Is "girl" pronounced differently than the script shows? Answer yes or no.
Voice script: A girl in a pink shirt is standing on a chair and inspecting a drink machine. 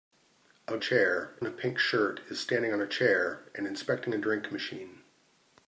yes